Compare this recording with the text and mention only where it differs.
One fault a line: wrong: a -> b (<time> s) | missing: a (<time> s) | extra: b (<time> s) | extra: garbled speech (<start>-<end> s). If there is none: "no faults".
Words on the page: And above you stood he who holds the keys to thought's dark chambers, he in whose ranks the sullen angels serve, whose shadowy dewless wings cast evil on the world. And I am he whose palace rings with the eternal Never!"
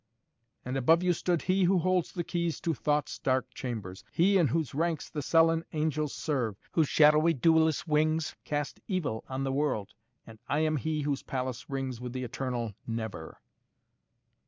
no faults